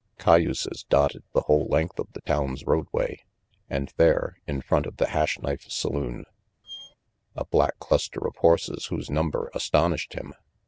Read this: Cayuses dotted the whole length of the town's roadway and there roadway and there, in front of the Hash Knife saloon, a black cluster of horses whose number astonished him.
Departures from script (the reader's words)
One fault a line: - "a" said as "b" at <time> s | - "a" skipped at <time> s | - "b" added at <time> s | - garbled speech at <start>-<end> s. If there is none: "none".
- "roadway and there" skipped at 4.4 s